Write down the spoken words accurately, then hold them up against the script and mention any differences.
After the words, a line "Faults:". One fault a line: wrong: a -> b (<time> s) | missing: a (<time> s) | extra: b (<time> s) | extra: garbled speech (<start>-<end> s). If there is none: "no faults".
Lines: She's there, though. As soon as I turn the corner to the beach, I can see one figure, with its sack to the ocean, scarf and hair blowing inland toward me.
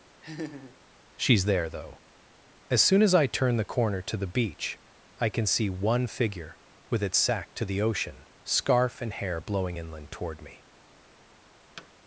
She's there, though. As soon as I turn the corner to the beach, I can see one figure, with its sack to the ocean, scarf and hair blowing inland toward me.
Faults:
no faults